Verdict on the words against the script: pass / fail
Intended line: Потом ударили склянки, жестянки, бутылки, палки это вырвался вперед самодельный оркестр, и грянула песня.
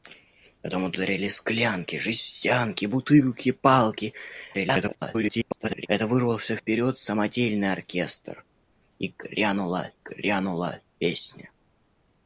fail